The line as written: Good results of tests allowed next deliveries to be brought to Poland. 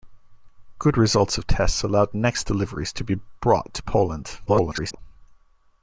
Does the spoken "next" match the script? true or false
true